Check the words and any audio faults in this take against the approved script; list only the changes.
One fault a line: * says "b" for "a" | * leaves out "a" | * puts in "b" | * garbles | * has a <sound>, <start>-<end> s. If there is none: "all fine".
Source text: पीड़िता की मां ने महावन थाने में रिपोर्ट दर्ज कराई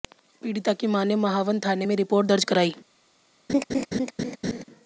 * has a laugh, 3.5-4.6 s